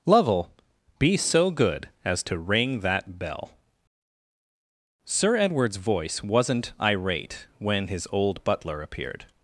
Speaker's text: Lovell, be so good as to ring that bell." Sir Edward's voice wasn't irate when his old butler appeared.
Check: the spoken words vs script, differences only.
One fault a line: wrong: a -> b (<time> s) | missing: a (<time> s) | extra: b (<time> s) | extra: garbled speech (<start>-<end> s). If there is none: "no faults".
no faults